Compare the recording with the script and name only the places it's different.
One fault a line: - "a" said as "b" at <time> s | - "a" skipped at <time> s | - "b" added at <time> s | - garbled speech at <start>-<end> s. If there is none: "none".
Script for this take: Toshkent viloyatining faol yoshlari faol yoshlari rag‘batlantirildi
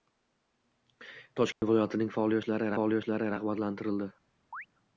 none